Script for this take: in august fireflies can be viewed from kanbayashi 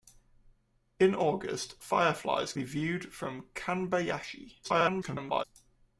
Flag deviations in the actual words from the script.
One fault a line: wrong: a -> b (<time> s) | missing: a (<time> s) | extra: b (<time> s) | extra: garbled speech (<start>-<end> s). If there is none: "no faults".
missing: can (2.5 s)
extra: garbled speech (4.6-5.4 s)